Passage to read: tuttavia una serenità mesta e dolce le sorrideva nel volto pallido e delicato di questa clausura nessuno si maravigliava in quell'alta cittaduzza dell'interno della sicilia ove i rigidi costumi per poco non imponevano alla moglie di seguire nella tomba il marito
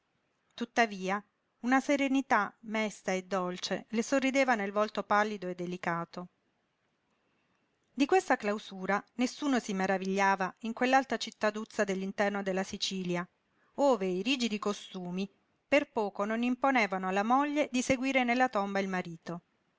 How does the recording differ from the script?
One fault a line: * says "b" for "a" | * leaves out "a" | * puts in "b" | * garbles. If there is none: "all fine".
all fine